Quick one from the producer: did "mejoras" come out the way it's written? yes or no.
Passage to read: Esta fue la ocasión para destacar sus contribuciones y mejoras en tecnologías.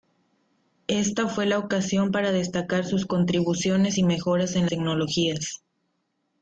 yes